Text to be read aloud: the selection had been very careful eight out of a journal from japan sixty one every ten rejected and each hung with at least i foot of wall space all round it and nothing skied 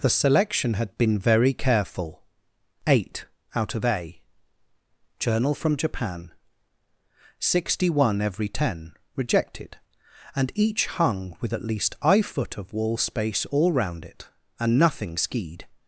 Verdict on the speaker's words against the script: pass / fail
pass